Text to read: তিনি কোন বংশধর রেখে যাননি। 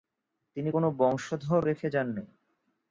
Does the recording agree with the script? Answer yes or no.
yes